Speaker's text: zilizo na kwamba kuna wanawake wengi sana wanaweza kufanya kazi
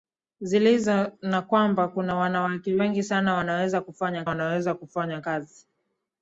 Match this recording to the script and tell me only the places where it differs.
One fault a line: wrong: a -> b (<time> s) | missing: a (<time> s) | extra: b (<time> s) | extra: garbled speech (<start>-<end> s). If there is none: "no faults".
extra: wanaweza kufanya (4.2 s)